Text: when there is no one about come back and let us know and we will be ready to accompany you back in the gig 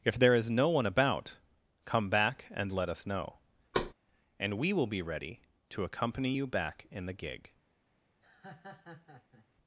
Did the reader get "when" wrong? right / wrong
wrong